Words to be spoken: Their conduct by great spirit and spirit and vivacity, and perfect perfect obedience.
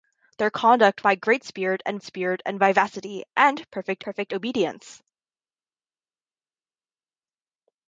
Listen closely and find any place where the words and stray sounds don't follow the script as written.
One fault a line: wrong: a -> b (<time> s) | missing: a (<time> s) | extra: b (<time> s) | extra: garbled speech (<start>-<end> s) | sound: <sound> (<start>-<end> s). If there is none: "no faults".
no faults